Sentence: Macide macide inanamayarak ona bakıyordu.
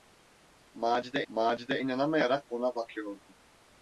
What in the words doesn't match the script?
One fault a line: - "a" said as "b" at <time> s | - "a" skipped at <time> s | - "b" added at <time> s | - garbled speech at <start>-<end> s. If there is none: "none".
none